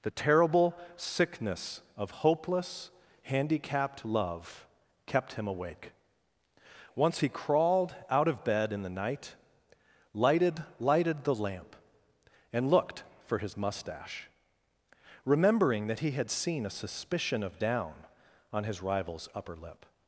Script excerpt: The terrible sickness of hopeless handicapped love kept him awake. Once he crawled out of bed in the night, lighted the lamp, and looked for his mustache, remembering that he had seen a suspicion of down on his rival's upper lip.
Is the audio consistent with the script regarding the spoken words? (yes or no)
no